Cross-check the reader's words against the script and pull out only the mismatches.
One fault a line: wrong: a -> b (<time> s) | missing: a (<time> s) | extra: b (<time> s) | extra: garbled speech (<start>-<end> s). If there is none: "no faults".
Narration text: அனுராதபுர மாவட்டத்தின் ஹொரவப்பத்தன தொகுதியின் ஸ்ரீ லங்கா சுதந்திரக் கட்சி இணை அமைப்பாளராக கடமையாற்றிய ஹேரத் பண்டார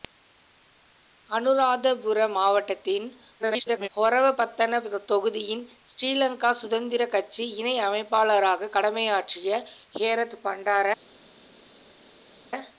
extra: garbled speech (3.4-3.9 s)